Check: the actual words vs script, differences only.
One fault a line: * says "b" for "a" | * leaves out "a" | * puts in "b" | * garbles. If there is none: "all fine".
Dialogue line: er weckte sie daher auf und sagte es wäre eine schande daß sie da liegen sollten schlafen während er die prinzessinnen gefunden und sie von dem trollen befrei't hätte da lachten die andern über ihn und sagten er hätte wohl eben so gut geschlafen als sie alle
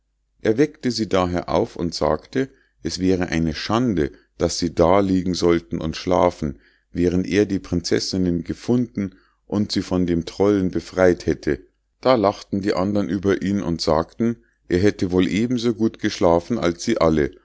* puts in "und"